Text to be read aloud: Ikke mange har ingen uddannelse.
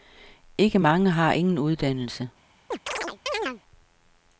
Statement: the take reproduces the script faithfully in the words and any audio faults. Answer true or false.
false